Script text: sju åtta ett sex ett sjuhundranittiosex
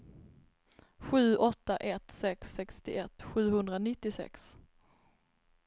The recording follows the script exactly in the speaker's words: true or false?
false